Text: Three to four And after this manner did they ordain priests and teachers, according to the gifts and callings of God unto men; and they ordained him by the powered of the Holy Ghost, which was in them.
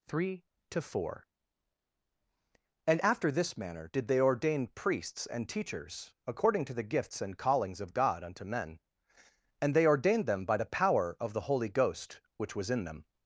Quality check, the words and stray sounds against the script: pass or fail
fail